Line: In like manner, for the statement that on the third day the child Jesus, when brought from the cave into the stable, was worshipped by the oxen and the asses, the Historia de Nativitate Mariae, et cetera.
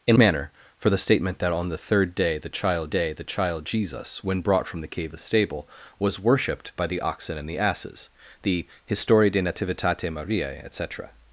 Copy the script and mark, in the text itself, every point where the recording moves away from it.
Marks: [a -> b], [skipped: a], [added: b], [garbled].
In [skipped: like] manner, for the statement that on the third day the child [added: day the child] Jesus, when brought from the cave [skipped: into] the stable, was worshipped by the oxen and the asses, the Historia de Nativitate Mariae, et cetera.